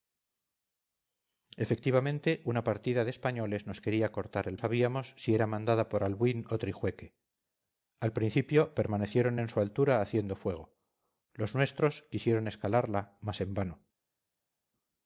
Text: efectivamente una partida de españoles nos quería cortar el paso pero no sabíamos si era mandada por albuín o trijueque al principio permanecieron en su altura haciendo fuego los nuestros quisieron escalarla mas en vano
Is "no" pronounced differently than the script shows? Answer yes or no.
yes